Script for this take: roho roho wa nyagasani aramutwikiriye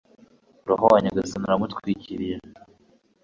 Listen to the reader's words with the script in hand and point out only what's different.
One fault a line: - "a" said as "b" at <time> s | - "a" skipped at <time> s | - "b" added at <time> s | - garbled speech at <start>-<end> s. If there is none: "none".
- "roho" skipped at 0.8 s